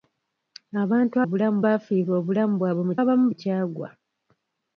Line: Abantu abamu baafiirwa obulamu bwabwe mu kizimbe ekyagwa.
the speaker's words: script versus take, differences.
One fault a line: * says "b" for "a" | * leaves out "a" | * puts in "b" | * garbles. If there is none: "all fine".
* says "obulamu" for "abamu"
* says "abamu" for "kizimbe"